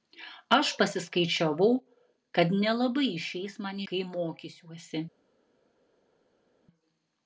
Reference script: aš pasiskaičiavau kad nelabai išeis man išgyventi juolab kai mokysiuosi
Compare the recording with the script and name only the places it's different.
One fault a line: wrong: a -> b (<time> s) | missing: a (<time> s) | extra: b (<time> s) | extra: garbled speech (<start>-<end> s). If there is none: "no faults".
missing: išgyventi juolab (3.8 s)